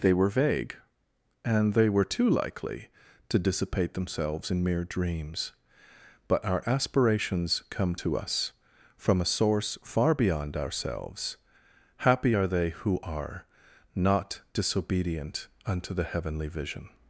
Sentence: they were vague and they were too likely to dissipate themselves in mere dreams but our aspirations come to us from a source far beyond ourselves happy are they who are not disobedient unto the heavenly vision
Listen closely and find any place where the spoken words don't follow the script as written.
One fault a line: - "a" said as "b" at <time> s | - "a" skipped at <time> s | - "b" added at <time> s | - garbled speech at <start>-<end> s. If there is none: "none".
none